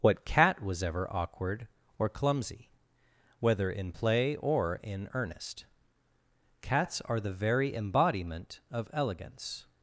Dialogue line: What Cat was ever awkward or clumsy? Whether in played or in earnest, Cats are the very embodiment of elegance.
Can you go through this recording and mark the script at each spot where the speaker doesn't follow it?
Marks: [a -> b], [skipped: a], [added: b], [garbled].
What Cat was ever awkward or clumsy? Whether in [played -> play] or in earnest, Cats are the very embodiment of elegance.